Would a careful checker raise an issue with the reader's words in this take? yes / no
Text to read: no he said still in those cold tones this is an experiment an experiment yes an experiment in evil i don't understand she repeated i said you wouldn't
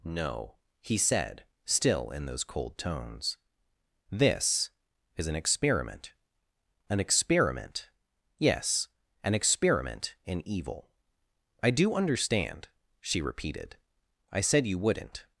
yes